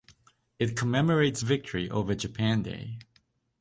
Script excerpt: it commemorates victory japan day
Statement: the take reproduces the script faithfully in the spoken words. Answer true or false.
false